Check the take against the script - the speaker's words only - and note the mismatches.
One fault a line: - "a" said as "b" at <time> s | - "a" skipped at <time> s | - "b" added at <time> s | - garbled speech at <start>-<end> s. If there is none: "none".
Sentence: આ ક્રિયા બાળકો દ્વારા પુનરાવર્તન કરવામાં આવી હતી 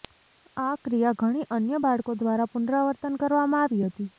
- "ઘણી અન્ય" added at 1.2 s